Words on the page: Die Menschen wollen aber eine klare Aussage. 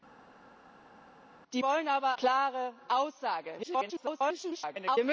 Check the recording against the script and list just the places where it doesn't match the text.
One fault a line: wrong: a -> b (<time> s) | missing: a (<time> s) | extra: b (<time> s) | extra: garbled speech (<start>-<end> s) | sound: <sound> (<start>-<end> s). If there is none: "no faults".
missing: Menschen (1.6 s)
missing: eine (2.2 s)
extra: garbled speech (3.6-5.0 s)